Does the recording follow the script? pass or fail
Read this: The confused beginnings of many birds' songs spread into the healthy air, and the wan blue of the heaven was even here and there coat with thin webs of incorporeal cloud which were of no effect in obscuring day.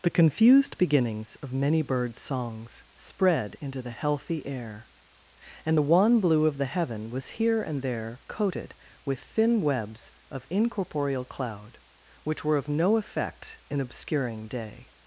fail